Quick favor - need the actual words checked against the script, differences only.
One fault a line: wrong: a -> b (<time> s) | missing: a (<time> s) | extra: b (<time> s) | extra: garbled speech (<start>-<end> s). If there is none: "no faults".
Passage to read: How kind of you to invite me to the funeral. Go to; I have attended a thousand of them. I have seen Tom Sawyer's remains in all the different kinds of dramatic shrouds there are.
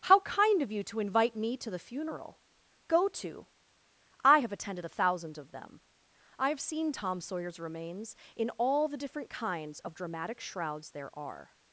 no faults